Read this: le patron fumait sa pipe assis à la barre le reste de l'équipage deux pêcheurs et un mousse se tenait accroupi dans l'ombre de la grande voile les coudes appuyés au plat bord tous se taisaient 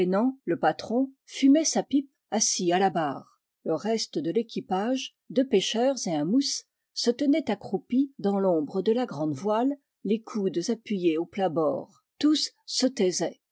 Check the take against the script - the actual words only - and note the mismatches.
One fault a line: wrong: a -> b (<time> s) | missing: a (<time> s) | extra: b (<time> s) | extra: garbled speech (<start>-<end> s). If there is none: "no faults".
no faults